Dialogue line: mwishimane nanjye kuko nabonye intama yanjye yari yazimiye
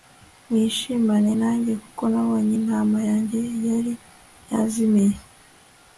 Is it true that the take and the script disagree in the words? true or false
false